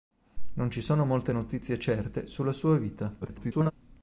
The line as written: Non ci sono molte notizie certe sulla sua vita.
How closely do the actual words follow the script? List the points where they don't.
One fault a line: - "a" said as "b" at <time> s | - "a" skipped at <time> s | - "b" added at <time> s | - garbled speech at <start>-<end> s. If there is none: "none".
- garbled speech at 3.2-3.7 s